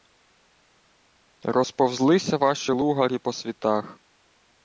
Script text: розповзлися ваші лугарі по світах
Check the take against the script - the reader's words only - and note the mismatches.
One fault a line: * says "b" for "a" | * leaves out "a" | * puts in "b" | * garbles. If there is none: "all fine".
all fine